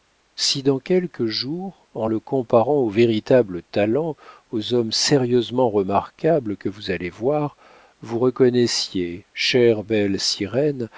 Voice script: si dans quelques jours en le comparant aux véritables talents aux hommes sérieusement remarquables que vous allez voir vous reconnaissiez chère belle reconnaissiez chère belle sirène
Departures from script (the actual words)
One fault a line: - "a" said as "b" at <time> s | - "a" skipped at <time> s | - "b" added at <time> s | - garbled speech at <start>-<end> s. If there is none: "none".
- "reconnaissiez chère belle" skipped at 10.2 s